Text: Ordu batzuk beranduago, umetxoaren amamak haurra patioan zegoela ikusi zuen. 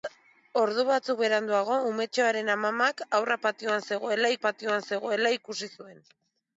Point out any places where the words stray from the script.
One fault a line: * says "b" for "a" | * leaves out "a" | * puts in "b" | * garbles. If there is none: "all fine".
* puts in "patioan zegoela"